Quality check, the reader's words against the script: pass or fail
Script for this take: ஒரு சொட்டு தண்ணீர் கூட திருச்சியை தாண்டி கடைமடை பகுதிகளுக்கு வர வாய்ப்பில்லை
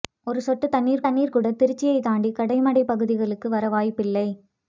fail